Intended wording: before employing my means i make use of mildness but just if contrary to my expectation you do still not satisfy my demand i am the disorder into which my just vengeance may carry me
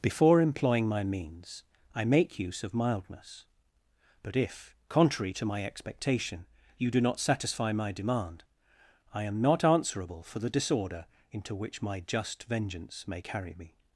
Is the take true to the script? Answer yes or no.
no